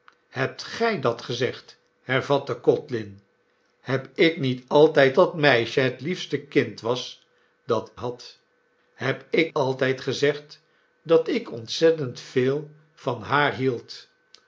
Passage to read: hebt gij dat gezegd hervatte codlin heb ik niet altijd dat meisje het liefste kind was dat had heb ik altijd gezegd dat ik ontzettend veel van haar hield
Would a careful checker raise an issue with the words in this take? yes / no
no